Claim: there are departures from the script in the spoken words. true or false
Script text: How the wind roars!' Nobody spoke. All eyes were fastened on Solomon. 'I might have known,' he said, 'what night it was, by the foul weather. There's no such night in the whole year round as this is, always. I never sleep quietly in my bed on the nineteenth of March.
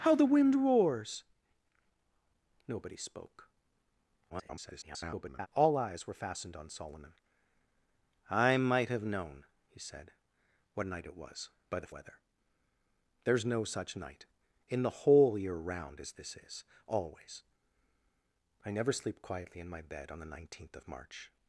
true